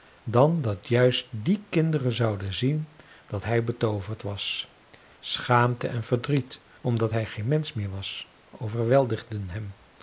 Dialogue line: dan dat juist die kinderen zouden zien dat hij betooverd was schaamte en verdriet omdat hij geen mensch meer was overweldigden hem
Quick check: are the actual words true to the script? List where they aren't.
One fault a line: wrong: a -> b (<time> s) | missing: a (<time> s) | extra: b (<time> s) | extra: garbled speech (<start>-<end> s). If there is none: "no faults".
no faults